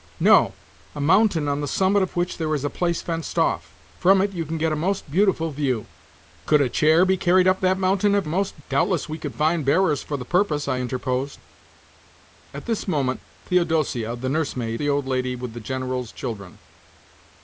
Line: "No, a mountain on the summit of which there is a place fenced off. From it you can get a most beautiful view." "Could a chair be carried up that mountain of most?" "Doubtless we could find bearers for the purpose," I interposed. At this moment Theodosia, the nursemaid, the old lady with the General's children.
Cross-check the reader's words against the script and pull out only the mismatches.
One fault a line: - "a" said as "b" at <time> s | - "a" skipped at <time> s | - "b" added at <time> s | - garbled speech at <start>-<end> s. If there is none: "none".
none